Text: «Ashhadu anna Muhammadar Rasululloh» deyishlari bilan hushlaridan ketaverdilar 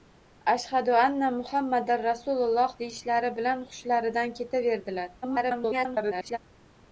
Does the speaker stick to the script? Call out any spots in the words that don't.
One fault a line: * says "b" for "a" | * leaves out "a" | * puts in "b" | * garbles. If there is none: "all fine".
* garbles